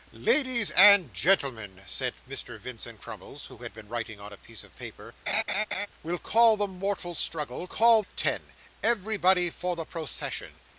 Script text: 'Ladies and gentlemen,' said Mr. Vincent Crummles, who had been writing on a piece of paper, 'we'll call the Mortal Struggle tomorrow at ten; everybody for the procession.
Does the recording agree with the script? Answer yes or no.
no